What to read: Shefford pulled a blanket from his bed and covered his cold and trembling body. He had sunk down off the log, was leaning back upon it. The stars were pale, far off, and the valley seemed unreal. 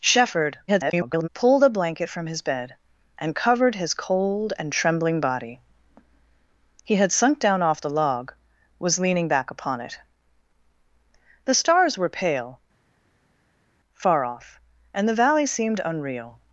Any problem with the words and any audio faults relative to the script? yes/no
yes